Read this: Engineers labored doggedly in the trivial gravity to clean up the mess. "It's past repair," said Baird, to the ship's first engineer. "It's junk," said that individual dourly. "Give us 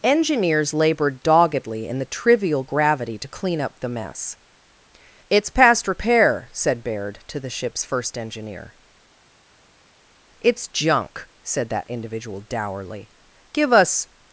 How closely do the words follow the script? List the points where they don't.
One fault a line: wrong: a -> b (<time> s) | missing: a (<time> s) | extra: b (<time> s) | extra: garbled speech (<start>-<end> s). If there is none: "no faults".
no faults